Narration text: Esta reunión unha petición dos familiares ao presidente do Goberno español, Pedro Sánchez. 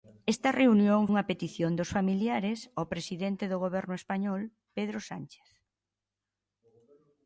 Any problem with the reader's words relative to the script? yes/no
no